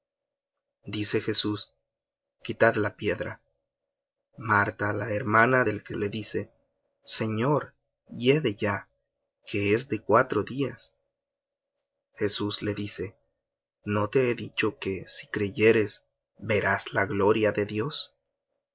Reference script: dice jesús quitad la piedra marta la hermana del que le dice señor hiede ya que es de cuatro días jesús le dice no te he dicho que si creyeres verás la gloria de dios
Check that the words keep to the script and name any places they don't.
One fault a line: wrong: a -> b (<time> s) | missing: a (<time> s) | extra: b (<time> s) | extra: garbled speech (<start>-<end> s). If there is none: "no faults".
no faults